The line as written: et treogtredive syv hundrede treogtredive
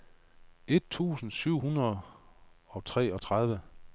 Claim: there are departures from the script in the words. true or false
true